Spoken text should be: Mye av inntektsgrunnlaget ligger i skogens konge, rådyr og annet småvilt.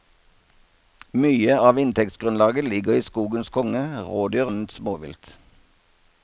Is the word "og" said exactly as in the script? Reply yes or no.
no